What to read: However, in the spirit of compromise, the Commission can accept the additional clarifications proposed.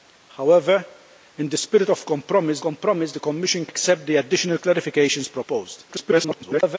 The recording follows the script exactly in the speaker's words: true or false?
false